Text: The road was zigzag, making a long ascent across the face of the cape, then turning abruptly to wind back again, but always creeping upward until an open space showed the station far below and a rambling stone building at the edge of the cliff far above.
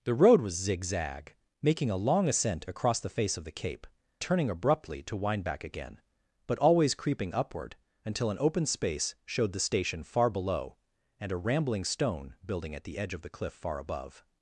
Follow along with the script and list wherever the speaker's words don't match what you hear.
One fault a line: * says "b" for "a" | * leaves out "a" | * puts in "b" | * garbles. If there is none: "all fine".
* leaves out "then"